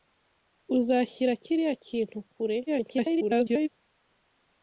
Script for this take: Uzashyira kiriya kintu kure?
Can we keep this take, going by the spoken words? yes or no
no